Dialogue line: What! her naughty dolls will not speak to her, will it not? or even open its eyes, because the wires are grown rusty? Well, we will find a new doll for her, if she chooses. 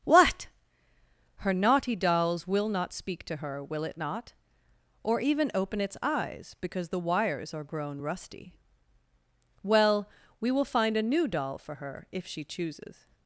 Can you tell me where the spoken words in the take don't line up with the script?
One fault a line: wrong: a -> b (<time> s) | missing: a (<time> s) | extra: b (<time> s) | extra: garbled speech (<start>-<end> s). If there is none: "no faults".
no faults